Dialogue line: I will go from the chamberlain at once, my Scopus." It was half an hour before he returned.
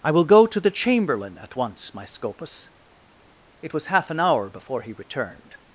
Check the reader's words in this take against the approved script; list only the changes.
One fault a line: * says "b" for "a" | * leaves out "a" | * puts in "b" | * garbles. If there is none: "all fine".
* says "to" for "from"